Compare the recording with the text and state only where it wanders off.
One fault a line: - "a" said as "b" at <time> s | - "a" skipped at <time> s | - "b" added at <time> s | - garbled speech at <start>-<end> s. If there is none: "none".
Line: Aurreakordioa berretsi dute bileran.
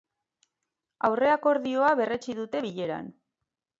none